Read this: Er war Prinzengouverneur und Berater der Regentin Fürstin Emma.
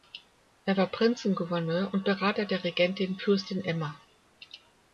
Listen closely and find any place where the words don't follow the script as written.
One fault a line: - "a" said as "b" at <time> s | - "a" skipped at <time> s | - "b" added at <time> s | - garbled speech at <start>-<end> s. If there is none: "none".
none